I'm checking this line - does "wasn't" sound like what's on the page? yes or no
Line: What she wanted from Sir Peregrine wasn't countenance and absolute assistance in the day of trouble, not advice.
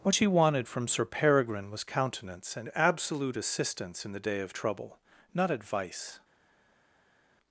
no